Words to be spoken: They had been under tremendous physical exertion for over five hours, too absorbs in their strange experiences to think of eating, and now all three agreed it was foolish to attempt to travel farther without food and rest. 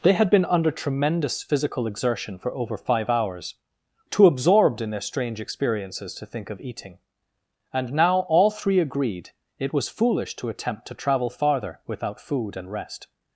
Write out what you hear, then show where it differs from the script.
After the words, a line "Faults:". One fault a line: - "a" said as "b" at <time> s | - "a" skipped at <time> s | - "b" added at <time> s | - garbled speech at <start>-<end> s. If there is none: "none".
They had been under tremendous physical exertion for over five hours, too absorbed in their strange experiences to think of eating, and now all three agreed it was foolish to attempt to travel farther without food and rest.
Faults:
- "absorbs" said as "absorbed" at 4.2 s